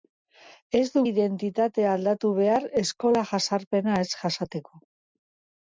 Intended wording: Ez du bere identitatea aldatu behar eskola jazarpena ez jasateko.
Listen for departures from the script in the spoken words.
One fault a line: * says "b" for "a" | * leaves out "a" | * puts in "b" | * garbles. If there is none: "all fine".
* leaves out "bere"